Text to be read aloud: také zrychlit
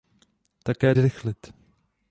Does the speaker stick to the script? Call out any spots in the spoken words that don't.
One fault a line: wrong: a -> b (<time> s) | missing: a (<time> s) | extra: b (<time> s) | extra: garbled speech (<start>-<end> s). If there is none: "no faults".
no faults